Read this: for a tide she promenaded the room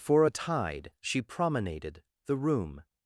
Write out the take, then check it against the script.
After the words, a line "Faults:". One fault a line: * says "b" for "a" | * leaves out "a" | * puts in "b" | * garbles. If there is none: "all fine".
for a tide she promenaded the room
Faults:
all fine